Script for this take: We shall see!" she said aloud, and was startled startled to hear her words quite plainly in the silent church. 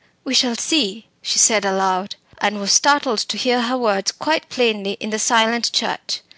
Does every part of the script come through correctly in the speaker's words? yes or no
no